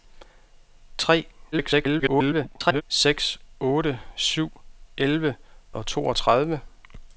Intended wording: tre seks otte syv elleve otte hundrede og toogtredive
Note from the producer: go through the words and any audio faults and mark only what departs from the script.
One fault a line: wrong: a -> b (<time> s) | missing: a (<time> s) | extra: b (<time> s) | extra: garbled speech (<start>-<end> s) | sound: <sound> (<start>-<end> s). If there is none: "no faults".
extra: garbled speech (1.5-2.8 s)
missing: otte hundrede (5.4 s)